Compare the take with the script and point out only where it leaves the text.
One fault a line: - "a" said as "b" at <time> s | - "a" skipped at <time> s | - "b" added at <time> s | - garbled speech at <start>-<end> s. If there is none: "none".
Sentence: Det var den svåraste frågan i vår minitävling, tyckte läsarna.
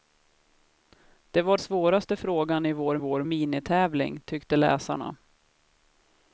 - "den" skipped at 1.6 s
- "vår" added at 3.0 s